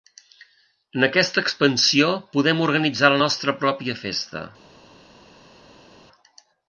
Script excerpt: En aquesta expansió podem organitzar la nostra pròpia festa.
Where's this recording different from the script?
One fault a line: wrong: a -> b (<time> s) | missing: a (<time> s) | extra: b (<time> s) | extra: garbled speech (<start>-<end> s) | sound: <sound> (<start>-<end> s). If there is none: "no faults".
no faults